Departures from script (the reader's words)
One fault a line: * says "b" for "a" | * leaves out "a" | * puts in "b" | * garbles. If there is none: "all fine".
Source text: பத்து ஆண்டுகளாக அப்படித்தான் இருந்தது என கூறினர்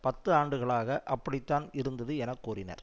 all fine